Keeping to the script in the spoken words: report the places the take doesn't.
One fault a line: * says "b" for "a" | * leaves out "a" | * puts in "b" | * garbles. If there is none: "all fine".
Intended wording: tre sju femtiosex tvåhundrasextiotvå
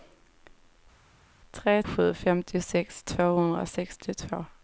all fine